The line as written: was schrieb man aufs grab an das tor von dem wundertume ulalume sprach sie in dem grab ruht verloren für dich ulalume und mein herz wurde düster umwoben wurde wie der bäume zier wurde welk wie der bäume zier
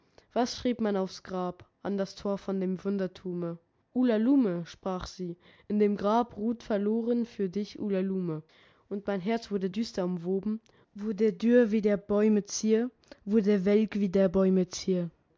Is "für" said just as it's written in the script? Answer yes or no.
yes